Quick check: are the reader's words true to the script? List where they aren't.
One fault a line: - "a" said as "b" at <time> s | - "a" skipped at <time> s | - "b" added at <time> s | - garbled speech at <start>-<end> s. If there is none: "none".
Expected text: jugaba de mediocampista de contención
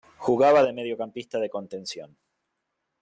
none